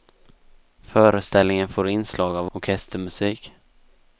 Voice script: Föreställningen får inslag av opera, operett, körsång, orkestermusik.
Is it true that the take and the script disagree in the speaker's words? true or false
true